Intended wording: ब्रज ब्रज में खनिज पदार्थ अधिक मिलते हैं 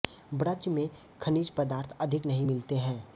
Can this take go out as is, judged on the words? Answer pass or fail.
fail